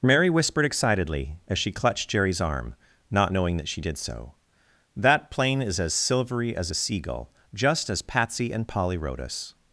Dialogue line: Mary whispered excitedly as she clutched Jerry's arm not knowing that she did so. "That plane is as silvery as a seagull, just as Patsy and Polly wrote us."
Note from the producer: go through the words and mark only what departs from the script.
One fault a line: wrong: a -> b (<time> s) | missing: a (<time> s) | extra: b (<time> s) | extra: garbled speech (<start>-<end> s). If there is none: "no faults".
no faults